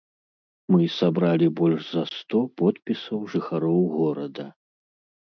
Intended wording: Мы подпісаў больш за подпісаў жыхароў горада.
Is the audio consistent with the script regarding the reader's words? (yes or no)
no